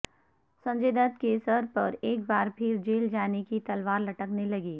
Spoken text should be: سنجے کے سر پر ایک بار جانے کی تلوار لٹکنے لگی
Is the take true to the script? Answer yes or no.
no